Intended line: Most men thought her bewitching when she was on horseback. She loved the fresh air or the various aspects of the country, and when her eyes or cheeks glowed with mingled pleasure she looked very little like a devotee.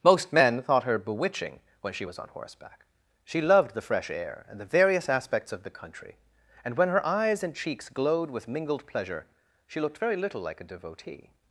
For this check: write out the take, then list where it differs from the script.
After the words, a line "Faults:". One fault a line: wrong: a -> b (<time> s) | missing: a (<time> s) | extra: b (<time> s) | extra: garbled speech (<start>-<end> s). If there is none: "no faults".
Most men thought her bewitching when she was on horseback. She loved the fresh air and the various aspects of the country, and when her eyes and cheeks glowed with mingled pleasure she looked very little like a devotee.
Faults:
wrong: or -> and (4.5 s)
wrong: or -> and (7.4 s)